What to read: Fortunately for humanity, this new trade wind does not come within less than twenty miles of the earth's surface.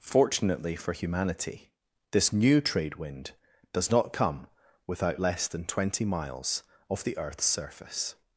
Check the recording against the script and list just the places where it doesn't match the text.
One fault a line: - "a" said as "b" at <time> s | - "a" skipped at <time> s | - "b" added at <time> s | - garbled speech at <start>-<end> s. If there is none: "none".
- "within" said as "without" at 4.9 s